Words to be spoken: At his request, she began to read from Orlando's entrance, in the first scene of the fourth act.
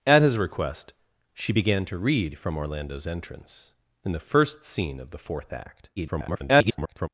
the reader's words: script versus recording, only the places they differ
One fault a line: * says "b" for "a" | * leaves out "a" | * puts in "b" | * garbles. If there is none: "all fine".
* garbles